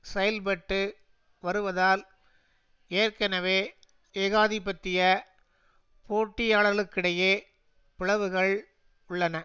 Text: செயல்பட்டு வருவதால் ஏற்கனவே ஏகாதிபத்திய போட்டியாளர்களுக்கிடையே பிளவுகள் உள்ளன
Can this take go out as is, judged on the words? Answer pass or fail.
pass